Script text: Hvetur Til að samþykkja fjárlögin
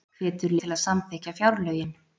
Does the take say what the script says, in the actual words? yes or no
yes